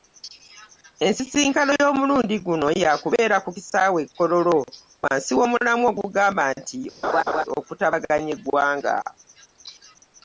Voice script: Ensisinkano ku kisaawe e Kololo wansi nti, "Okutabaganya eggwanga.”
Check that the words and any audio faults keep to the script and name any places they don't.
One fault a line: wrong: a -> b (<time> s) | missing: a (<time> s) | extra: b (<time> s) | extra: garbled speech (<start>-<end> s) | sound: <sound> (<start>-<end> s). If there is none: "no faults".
extra: y'omulundi guno yaakubeera (1.8 s)
extra: w'omulamwa ogugamba (5.4 s)
sound: laugh (7.0-7.4 s)